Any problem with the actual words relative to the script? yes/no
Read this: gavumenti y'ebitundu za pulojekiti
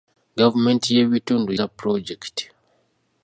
no